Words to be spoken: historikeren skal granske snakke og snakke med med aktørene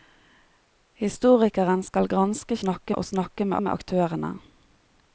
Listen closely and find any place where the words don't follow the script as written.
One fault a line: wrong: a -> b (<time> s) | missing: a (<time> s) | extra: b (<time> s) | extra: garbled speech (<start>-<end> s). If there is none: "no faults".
no faults